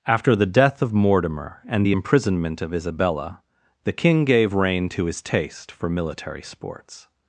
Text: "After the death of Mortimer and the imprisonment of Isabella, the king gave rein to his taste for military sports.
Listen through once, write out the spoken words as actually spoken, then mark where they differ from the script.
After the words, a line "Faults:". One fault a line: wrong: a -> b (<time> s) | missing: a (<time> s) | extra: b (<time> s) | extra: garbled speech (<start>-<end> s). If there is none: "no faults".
"After the death of Mortimer and the imprisonment of Isabella, the king gave rein to his taste for military sports.
Faults:
no faults